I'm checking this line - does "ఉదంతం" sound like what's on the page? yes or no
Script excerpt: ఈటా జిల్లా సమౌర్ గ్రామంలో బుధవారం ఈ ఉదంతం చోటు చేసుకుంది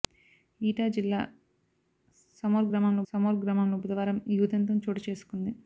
yes